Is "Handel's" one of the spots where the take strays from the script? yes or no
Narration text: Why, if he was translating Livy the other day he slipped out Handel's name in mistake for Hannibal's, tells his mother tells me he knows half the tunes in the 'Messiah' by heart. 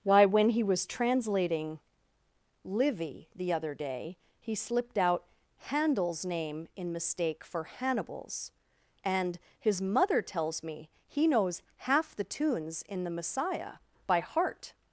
no